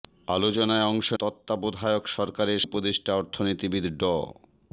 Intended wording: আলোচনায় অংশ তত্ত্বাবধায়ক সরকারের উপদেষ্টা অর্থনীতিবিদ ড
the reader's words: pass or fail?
pass